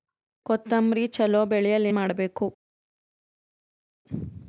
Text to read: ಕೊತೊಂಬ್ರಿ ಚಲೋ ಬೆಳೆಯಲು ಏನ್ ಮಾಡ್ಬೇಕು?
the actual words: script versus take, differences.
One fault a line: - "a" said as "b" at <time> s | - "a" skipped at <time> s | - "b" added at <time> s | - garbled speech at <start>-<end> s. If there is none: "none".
- "ಏನ್" skipped at 1.9 s